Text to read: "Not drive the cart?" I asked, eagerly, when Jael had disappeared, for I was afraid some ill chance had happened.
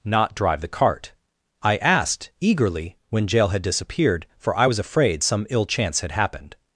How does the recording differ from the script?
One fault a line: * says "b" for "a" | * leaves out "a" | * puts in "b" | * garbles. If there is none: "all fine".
all fine